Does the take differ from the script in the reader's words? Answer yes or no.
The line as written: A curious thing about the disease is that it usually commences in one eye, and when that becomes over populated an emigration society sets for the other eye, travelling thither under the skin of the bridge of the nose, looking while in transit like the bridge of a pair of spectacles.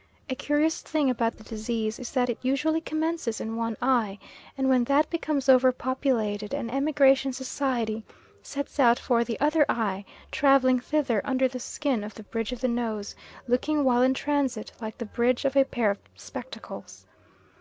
yes